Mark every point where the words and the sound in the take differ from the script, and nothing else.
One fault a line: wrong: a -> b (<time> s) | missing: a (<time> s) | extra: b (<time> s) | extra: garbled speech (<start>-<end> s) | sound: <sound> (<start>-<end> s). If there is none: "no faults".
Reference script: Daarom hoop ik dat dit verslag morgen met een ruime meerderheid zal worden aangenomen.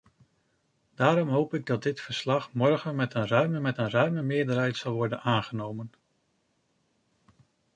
extra: met een ruime (3.6 s)